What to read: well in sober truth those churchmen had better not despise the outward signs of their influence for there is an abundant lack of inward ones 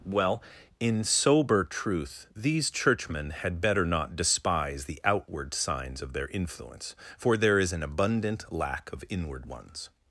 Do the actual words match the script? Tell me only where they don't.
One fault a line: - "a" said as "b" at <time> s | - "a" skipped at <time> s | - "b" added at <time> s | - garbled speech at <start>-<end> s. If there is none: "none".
- "those" said as "these" at 2.4 s